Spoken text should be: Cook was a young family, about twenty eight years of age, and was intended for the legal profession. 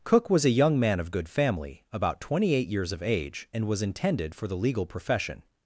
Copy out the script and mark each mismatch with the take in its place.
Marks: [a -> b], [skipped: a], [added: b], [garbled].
Cook was a young [added: man of good] family, about twenty eight years of age, and was intended for the legal profession.